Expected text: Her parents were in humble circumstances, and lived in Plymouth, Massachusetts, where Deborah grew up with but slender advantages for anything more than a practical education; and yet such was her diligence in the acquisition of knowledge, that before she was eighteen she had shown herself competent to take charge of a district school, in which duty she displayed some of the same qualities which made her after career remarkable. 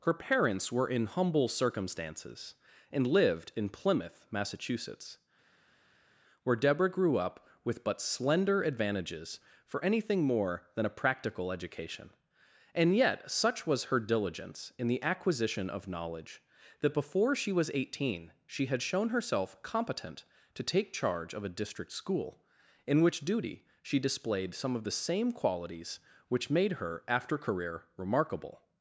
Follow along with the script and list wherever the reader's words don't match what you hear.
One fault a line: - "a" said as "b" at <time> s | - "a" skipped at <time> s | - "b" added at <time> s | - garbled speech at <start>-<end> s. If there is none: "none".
none